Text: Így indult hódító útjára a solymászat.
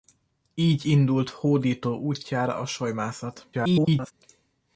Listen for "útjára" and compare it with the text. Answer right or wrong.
right